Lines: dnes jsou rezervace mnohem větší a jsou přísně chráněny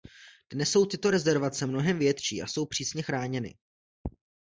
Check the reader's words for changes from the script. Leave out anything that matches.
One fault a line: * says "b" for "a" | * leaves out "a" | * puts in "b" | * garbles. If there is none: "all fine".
* puts in "tyto"